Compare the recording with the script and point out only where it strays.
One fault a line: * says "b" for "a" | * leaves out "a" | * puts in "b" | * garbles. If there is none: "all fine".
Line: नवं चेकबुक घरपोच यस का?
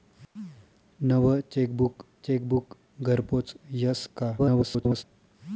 * puts in "चेकबुक"
* garbles